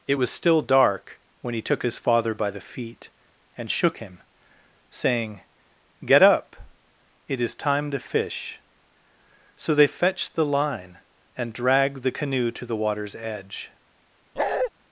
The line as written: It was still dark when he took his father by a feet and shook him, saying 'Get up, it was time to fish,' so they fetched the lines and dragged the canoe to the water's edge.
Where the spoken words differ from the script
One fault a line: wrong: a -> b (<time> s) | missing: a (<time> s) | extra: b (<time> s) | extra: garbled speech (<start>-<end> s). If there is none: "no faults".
wrong: a -> the (2.5 s)
wrong: was -> is (7.4 s)
wrong: lines -> line (10.5 s)